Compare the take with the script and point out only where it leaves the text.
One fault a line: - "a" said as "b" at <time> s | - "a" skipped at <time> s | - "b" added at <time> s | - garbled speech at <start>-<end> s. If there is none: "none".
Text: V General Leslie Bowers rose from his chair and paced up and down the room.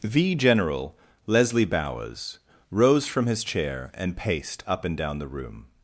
none